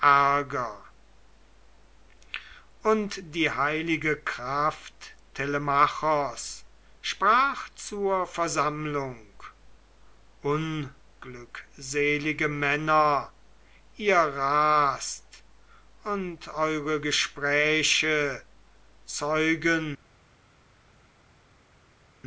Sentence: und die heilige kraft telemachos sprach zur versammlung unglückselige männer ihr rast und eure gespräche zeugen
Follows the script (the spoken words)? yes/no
yes